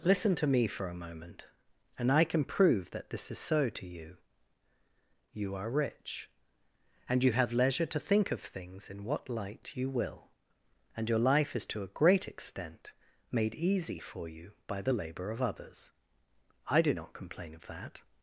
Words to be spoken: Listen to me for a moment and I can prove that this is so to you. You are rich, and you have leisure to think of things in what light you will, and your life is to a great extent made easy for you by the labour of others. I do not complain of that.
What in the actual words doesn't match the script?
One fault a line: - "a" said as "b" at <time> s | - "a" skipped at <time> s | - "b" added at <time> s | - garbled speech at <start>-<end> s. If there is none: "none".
none